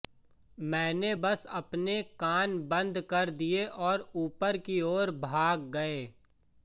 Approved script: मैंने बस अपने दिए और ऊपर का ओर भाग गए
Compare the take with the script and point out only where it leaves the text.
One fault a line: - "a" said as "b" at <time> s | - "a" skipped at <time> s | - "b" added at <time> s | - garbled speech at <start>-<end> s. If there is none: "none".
- "कान बंद कर" added at 2.2 s
- "का" said as "की" at 4.6 s